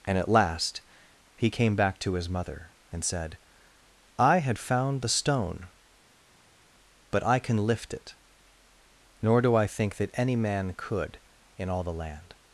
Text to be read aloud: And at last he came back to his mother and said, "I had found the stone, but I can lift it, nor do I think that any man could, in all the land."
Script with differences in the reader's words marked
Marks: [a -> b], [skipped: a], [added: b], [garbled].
And at last he came back to his mother and said, "I had found the stone, but I can lift it, nor do I think that any man could, in all the land."